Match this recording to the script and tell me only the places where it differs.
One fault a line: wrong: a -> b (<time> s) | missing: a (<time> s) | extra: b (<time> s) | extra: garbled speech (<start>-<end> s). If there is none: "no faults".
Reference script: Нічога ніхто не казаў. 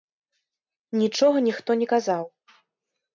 no faults